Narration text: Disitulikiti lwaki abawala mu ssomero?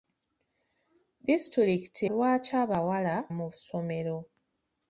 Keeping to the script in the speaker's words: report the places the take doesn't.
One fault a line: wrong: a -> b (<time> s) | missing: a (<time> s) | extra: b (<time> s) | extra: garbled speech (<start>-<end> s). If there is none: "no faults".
no faults